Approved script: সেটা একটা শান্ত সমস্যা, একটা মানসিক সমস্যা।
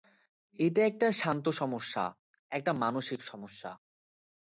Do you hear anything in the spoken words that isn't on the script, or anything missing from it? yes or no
yes